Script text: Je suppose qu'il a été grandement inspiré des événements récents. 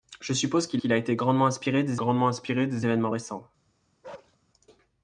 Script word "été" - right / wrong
right